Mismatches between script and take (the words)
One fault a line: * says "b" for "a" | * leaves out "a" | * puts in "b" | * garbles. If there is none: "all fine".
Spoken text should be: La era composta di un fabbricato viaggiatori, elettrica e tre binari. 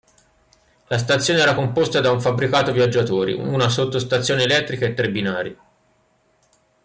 * puts in "stazione"
* says "da" for "di"
* puts in "una sottostazione"